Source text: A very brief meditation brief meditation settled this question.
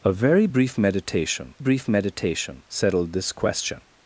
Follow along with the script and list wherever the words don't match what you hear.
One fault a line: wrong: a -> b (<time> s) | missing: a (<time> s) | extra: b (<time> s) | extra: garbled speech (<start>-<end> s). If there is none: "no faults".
no faults